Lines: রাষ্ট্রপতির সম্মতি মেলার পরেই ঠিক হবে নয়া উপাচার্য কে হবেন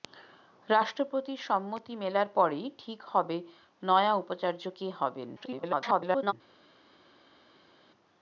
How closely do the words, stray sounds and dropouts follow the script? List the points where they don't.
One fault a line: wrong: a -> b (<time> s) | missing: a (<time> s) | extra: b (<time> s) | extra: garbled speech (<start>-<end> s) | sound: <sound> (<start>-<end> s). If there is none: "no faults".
extra: garbled speech (5.4-6.3 s)